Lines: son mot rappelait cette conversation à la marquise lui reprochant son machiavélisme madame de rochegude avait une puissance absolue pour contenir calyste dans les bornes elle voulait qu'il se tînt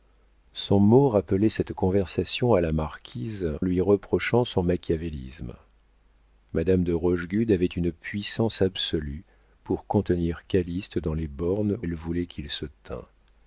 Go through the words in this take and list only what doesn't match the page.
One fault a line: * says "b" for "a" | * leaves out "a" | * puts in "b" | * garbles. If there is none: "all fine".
all fine